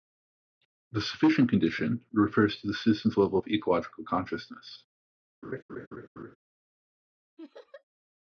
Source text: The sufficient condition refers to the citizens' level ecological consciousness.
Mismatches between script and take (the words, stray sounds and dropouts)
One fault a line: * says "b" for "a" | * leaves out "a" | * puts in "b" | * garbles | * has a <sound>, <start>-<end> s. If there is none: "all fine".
* puts in "of"
* has a laugh, 5.4-6.4 s
* has a laugh, 7.4-7.8 s